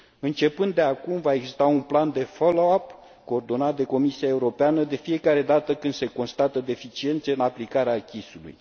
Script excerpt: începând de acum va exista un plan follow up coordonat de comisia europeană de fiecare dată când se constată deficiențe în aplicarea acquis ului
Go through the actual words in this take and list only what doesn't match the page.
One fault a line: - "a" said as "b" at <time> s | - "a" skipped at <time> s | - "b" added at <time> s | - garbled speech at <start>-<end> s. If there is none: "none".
- "de" added at 2.1 s